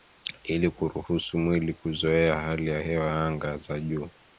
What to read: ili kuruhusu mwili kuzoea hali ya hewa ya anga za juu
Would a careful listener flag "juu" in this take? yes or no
no